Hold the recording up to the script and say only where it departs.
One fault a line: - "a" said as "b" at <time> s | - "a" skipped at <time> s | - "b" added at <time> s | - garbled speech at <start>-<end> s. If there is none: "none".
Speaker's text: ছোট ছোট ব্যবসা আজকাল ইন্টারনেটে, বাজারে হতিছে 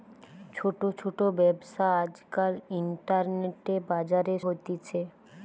none